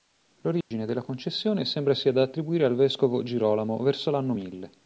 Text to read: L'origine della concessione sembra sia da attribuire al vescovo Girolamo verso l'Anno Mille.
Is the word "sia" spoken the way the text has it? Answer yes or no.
yes